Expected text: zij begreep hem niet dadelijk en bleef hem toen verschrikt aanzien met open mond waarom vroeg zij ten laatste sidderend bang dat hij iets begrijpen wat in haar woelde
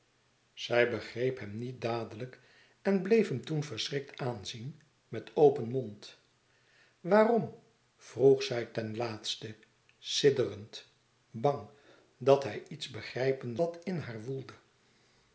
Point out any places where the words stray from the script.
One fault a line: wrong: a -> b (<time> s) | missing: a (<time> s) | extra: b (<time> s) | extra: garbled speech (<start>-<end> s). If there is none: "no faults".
no faults